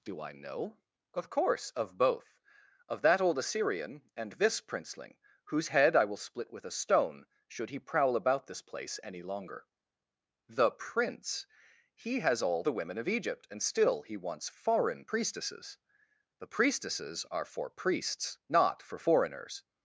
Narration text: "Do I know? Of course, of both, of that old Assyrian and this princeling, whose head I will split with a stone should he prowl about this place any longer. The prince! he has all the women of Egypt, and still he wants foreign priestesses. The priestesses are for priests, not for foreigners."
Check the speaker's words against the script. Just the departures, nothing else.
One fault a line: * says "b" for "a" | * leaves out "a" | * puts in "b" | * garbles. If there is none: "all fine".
all fine